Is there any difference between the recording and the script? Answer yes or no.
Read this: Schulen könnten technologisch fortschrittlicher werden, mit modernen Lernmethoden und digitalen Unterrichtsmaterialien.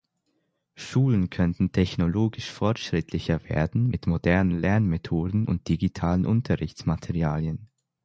no